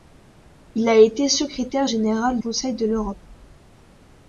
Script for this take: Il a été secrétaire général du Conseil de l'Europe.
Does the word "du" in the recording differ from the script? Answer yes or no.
yes